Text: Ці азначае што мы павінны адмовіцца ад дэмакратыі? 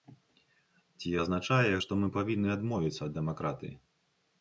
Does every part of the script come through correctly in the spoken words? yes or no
yes